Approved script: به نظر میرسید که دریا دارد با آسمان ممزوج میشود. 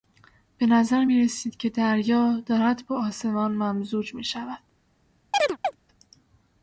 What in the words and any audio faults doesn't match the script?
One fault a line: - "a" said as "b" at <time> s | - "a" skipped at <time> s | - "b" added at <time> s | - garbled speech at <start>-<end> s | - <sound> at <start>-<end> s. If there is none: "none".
- chirp at 5.3-5.8 s